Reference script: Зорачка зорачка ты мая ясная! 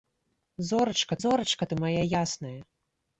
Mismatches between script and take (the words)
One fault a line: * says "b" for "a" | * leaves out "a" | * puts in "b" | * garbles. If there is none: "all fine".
all fine